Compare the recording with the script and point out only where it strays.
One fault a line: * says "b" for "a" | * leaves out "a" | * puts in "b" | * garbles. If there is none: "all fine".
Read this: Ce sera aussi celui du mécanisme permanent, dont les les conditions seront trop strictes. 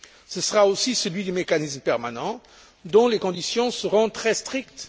* leaves out "les"
* says "très" for "trop"